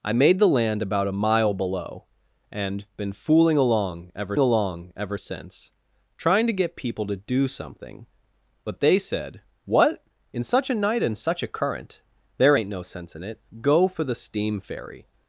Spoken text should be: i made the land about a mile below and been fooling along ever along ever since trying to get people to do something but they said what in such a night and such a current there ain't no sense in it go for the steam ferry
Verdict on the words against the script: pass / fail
pass